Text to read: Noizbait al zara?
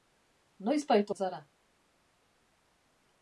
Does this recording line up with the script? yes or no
yes